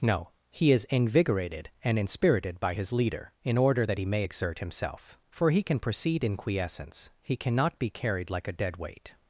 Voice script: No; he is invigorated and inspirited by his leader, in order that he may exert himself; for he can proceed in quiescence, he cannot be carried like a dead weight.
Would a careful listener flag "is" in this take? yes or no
no